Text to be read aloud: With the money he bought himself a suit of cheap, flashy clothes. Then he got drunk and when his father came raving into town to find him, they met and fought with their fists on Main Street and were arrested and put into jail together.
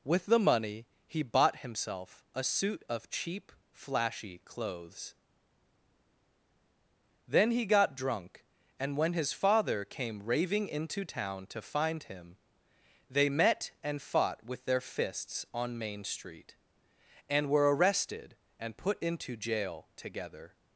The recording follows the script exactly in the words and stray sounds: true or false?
true